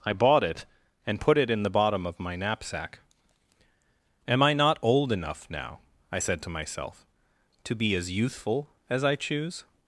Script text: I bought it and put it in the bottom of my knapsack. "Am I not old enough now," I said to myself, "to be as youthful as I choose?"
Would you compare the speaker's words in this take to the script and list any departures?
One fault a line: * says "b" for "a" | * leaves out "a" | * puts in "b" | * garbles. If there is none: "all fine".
all fine